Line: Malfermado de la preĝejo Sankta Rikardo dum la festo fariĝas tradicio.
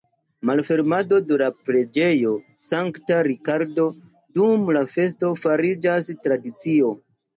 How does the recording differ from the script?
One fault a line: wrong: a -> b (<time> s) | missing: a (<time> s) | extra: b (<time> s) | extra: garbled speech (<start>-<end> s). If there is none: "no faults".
no faults